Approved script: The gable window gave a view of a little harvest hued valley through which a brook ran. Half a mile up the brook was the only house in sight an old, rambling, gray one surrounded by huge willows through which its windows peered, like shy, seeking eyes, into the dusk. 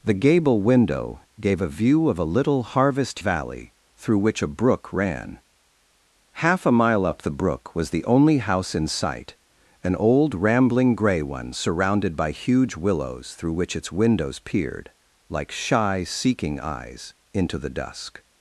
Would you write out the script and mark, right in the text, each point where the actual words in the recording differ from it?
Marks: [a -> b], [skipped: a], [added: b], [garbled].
The gable window gave a view of a little harvest [skipped: hued] valley through which a brook ran. Half a mile up the brook was the only house in sight an old, rambling, gray one surrounded by huge willows through which its windows peered, like shy, seeking eyes, into the dusk.